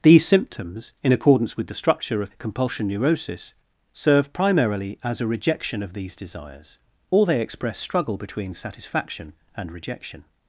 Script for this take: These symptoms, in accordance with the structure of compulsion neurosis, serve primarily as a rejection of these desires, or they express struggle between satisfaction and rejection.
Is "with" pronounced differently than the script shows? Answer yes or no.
no